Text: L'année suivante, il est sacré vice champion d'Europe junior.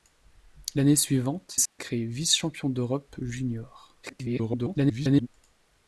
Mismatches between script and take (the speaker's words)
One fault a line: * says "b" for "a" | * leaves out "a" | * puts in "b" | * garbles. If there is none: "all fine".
* leaves out "il"
* garbles